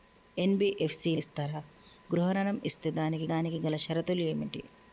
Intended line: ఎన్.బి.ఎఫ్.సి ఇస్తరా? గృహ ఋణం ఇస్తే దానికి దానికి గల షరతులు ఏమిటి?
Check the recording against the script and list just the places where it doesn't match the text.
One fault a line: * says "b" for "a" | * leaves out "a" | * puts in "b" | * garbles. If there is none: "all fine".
all fine